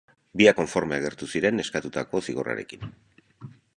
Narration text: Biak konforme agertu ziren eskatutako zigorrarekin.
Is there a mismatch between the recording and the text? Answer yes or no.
no